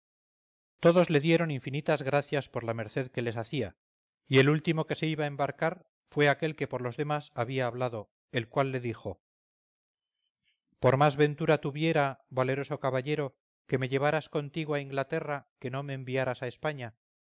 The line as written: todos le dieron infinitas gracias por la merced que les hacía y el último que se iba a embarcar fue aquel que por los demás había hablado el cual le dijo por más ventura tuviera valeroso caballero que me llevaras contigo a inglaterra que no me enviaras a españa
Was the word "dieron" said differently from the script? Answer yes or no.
no